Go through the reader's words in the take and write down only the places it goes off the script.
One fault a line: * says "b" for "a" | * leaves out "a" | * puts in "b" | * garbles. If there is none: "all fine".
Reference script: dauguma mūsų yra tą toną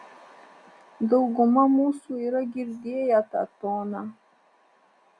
* puts in "girdėję"